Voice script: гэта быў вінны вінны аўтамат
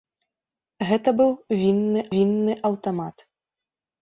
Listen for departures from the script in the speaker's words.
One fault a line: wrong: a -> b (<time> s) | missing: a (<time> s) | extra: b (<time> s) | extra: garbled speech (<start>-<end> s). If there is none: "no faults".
no faults